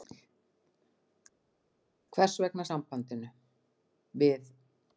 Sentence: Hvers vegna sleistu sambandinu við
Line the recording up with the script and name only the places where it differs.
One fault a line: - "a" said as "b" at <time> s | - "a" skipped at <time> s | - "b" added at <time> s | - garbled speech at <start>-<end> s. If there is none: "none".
- "sleistu" skipped at 2.7 s